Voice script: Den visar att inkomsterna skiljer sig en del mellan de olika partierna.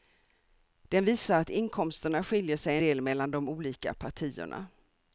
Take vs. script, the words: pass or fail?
fail